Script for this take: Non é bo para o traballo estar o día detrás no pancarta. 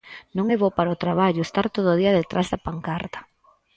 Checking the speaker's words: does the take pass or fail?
fail